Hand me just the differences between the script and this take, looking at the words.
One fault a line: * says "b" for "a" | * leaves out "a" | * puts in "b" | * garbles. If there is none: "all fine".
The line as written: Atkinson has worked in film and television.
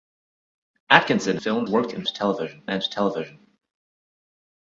* says "film" for "has"
* says "television" for "film"